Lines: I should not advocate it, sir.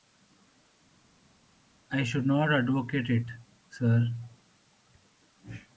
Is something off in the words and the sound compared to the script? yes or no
no